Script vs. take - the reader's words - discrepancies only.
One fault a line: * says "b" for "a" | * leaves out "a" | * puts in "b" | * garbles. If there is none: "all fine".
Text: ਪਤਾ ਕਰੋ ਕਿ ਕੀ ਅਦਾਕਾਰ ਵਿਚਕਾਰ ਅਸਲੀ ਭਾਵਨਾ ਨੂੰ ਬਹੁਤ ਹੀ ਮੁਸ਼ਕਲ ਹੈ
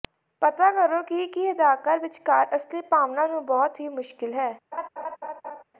all fine